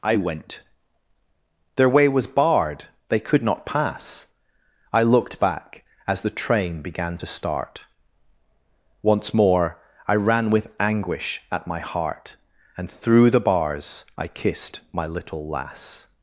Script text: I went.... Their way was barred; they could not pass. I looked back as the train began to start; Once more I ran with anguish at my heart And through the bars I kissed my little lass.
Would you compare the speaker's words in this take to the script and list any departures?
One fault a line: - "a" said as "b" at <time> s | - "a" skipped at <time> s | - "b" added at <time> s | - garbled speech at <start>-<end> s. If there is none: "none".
none